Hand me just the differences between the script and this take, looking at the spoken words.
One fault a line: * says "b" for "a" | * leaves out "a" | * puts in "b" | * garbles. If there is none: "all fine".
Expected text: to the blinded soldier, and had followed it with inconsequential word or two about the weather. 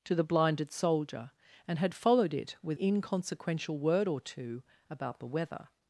all fine